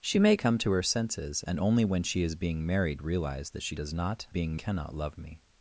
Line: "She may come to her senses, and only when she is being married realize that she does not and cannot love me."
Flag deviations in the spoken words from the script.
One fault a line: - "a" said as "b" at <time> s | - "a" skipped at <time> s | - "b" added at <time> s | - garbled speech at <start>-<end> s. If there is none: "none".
- "and" said as "being" at 4.3 s